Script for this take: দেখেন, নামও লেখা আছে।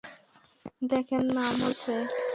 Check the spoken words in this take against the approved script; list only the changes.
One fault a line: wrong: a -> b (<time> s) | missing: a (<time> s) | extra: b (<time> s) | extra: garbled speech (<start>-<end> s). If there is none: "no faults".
missing: লেখা (1.7 s)